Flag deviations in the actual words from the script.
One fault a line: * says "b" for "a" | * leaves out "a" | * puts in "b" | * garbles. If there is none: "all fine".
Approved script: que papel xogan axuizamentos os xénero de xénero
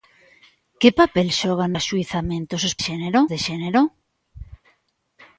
all fine